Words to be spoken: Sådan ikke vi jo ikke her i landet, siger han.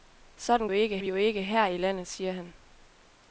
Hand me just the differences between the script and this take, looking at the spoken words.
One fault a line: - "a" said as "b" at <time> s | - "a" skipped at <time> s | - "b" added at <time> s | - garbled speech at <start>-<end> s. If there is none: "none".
none